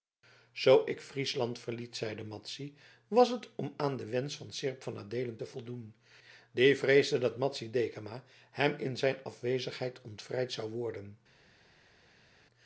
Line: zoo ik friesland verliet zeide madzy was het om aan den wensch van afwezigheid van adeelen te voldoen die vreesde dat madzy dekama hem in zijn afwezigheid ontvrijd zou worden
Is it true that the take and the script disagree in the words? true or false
true